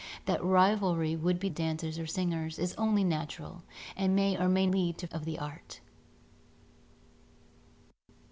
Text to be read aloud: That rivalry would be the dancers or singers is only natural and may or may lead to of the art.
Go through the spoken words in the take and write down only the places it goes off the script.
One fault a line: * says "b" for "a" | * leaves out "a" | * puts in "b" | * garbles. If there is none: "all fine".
all fine